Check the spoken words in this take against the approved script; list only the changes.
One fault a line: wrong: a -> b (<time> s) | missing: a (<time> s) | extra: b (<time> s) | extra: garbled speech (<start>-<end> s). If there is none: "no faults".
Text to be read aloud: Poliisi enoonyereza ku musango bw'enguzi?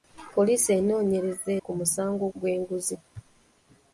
no faults